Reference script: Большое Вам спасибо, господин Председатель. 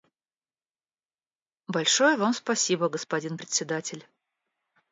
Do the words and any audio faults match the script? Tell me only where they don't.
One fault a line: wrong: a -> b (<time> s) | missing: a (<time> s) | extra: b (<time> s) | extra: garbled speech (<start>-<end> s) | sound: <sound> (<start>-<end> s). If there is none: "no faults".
no faults